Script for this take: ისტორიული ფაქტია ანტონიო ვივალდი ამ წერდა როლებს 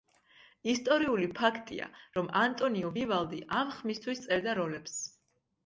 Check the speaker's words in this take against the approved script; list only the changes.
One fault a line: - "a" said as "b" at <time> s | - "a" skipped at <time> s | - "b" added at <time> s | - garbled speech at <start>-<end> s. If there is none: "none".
- "რომ" added at 2.2 s
- "ხმისთვის" added at 3.8 s